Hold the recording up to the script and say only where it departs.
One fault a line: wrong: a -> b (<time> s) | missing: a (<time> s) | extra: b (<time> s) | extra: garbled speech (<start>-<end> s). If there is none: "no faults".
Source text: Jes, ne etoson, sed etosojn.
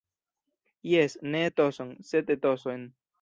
no faults